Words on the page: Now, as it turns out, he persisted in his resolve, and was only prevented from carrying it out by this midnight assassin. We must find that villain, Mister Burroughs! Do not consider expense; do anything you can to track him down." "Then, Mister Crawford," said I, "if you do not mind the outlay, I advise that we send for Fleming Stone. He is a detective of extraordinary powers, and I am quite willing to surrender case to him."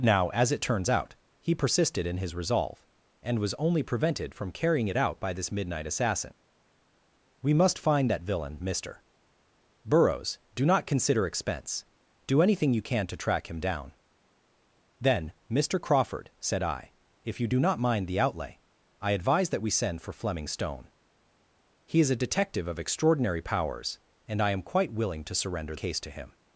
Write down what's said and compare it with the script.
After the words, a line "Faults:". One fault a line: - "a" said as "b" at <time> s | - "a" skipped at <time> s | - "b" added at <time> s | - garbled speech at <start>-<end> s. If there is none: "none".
Now, as it turns out, he persisted in his resolve, and was only prevented from carrying it out by this midnight assassin. We must find that villain, Mister Burroughs! Do not consider expense; do anything you can to track him down." "Then, Mister Crawford," said I, "if you do not mind the outlay, I advise that we send for Fleming Stone. He is a detective of extraordinary powers, and I am quite willing to surrender case to him."
Faults:
none